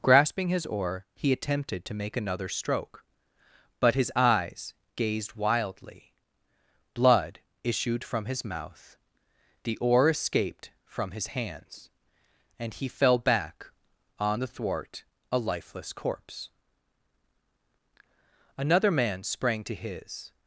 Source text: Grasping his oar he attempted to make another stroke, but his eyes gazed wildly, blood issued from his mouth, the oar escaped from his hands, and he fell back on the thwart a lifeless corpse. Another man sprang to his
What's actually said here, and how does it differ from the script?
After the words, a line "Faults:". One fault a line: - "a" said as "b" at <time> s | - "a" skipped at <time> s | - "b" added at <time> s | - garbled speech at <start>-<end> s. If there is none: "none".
Grasping his oar he attempted to make another stroke, but his eyes gazed wildly, blood issued from his mouth, the oar escaped from his hands, and he fell back on the thwart a lifeless corpse. Another man sprang to his
Faults:
none